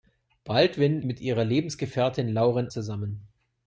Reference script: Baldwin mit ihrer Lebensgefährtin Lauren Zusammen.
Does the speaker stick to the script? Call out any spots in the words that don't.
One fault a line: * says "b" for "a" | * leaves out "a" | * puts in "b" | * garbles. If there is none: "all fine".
all fine